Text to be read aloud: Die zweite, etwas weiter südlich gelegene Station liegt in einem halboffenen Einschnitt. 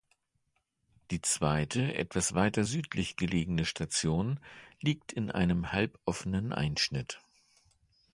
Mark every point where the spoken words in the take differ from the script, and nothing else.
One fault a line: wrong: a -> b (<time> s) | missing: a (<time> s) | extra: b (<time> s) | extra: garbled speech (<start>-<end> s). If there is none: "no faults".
no faults